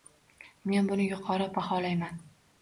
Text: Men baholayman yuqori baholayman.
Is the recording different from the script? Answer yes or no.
yes